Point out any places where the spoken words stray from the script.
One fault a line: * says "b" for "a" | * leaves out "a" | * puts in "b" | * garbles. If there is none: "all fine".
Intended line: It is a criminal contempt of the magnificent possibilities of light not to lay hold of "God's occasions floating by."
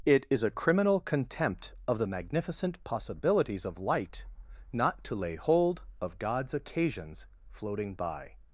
all fine